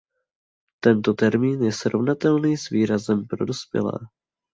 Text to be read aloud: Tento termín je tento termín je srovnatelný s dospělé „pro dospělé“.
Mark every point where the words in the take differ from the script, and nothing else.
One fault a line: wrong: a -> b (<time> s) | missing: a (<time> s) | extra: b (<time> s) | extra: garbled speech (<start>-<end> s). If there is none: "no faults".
missing: tento termín je (1.7 s)
wrong: dospělé -> výrazem (2.7 s)